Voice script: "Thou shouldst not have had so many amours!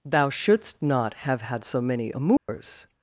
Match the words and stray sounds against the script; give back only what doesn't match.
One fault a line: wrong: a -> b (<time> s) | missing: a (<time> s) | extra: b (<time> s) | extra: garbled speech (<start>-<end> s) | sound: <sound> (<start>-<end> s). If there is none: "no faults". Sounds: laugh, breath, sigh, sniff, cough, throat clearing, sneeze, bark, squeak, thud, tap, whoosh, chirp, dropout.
sound: dropout (2.4-2.5 s)